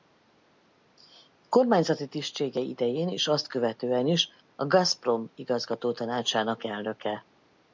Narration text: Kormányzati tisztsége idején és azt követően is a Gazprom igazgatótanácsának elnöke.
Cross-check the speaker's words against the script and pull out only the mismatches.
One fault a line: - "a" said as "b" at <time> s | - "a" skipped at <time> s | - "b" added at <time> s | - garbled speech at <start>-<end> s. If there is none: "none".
none